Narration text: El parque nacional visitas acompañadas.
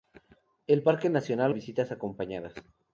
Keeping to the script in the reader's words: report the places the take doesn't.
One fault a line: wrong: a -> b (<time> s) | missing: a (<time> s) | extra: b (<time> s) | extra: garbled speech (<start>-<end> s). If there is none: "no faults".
no faults